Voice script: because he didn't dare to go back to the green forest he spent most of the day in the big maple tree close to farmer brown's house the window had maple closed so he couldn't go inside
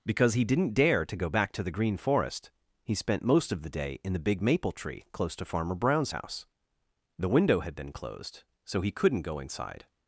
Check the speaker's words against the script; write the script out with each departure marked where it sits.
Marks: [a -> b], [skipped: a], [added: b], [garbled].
because he didn't dare to go back to the green forest he spent most of the day in the big maple tree close to farmer brown's house the window had [maple -> been] closed so he couldn't go inside